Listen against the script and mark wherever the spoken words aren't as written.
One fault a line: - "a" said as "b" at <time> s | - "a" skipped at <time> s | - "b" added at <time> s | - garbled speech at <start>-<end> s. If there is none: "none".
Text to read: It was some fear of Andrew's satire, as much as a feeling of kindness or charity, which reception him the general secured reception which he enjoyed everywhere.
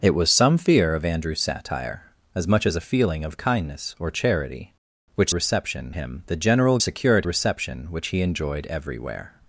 none